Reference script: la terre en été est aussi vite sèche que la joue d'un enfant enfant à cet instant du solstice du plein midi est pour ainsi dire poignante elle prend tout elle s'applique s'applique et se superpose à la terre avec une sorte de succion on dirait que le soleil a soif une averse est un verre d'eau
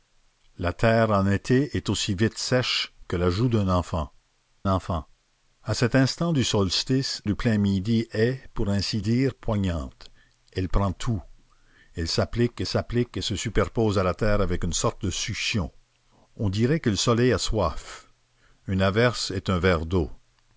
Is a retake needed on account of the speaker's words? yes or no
no